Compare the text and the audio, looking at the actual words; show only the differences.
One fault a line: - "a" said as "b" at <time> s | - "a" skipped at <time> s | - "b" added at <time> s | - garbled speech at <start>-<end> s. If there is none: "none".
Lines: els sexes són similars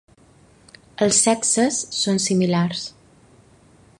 none